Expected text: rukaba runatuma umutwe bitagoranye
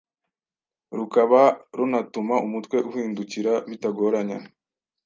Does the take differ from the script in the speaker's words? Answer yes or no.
yes